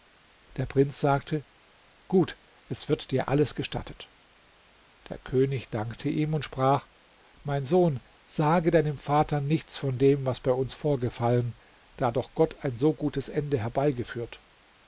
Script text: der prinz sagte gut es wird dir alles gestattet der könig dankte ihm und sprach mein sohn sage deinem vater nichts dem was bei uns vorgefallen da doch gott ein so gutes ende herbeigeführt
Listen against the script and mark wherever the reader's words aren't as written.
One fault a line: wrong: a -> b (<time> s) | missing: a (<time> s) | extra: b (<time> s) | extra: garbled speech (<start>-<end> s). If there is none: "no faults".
extra: von (9.8 s)